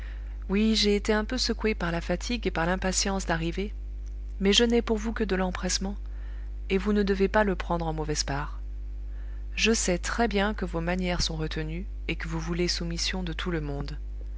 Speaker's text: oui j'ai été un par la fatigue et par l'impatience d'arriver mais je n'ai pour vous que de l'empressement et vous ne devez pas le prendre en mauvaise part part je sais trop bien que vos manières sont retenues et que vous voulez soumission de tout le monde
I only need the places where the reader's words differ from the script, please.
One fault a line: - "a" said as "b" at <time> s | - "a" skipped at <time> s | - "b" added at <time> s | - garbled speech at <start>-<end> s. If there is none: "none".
- "peu secoué" added at 1.2 s
- "part" skipped at 8.6 s
- "trop" said as "très" at 10.0 s